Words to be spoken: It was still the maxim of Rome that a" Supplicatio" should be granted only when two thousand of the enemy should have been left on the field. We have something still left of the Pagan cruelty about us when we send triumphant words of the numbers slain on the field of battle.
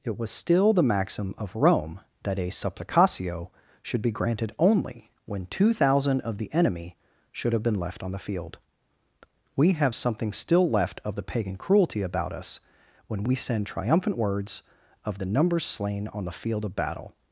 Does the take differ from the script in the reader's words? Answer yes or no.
no